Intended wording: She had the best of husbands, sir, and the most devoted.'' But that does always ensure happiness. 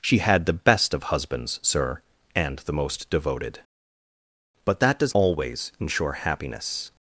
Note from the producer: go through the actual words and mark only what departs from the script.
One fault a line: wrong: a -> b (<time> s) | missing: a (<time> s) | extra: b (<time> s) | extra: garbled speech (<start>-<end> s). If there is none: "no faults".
no faults